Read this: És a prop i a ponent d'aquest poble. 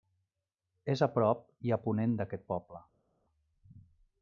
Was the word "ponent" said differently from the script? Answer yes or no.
no